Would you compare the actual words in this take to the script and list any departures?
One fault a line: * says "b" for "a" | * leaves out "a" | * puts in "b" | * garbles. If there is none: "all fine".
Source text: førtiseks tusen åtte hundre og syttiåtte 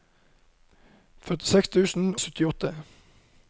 * leaves out "åtte hundre"